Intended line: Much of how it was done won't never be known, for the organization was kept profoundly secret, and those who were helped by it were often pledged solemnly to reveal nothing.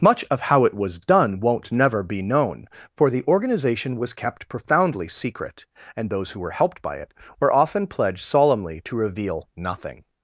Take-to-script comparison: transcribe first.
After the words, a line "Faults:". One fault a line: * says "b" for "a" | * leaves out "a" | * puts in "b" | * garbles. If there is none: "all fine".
Much of how it was done won't never be known, for the organization was kept profoundly secret, and those who were helped by it were often pledged solemnly to reveal nothing.
Faults:
all fine